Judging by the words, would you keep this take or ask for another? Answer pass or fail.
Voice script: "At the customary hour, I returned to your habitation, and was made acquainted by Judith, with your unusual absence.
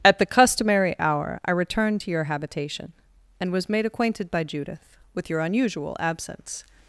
pass